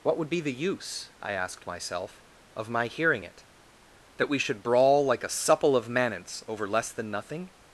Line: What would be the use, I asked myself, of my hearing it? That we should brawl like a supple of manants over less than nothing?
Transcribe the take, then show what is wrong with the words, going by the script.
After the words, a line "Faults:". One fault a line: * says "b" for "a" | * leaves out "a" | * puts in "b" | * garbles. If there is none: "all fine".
What would be the use, I asked myself, of my hearing it? That we should brawl like a supple of manants over less than nothing?
Faults:
all fine